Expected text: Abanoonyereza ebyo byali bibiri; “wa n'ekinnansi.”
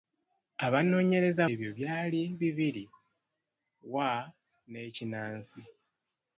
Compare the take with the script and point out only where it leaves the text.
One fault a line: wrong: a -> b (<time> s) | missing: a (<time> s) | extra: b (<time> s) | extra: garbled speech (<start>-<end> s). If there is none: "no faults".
no faults